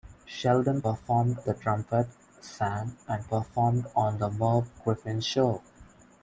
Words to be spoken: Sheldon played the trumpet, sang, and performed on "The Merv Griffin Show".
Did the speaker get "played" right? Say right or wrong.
wrong